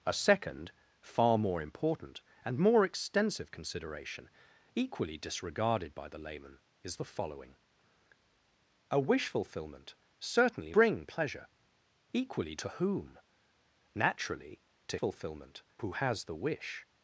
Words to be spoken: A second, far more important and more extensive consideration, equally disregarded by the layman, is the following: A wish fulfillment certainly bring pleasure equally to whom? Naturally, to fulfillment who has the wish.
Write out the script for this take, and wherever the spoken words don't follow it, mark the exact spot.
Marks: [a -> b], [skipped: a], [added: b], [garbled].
A second, far more important and more extensive consideration, equally disregarded by the layman, is the following: A wish fulfillment certainly bring pleasure equally to whom? Naturally, to fulfillment who has the wish.